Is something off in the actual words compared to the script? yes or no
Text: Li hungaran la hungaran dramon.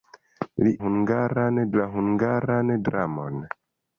no